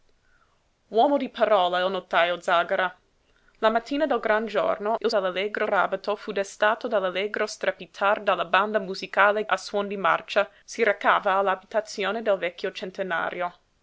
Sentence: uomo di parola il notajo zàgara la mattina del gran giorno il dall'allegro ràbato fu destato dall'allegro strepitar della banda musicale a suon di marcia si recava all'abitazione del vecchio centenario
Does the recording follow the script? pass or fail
pass